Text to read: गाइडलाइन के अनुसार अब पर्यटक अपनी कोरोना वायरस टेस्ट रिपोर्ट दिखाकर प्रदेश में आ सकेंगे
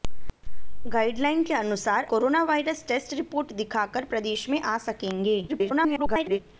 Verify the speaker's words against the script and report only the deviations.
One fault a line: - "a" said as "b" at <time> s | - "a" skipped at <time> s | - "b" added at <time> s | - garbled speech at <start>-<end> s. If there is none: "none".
- "अब पर्यटक अपनी" skipped at 2.0 s
- garbled speech at 5.5-6.4 s